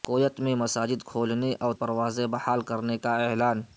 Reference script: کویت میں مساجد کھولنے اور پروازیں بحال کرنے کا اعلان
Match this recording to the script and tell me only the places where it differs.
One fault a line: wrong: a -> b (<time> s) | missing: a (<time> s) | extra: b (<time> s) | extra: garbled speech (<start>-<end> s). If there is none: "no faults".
no faults